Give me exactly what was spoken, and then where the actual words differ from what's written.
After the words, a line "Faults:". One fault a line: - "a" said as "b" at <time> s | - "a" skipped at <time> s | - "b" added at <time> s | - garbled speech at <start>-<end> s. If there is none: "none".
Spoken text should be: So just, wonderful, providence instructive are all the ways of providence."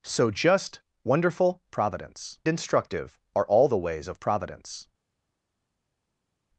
So just, wonderful, providence instructive are all the ways of providence."
Faults:
none